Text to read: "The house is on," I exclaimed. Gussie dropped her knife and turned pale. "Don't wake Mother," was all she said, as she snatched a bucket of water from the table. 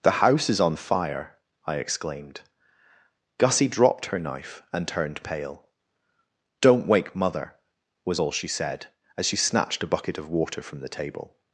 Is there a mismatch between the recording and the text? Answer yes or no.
yes